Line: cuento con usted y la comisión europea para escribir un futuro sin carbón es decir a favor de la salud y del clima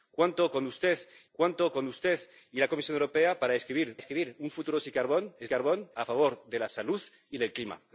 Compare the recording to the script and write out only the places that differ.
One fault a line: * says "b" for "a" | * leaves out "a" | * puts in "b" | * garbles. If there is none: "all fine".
* puts in "cuento con usted"
* puts in "escribir"
* says "carbón" for "decir"